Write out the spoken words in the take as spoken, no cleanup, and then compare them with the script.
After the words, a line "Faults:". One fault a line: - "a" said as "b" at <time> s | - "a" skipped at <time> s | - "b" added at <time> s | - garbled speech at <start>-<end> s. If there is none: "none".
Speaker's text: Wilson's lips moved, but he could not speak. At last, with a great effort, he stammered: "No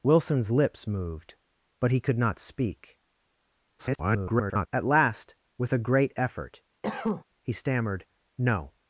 Wilson's lips moved, but he could not speak. [garbled] At last, with a great effort, he stammered: "No
Faults:
- garbled speech at 3.8-4.7 s